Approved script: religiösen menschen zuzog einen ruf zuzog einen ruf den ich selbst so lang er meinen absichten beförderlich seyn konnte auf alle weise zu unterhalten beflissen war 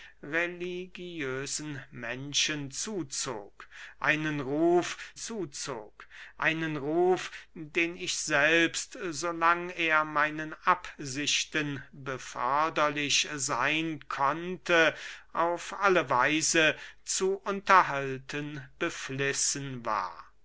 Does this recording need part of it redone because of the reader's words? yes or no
no